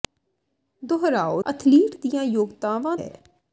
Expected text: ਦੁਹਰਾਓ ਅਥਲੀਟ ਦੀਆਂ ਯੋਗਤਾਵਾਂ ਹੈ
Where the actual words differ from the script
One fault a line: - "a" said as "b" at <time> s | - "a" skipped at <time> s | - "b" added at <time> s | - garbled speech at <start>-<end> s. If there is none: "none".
none